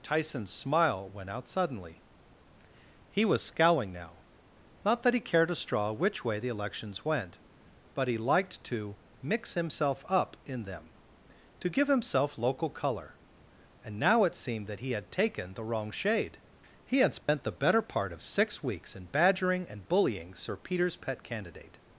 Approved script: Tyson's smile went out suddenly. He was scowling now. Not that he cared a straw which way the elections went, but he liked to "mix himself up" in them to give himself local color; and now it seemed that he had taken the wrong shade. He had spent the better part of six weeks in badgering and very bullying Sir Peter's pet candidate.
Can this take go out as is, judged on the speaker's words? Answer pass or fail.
fail